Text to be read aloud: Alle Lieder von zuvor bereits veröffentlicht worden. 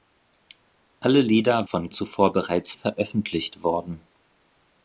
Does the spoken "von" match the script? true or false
true